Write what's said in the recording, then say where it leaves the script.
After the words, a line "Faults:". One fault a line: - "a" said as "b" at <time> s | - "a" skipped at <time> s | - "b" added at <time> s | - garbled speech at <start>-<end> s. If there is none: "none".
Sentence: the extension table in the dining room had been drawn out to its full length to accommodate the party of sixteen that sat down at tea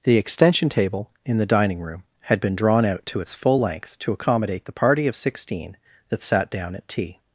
the extension table in the dining room had been drawn out to its full length to accommodate the party of sixteen that sat down at tea
Faults:
none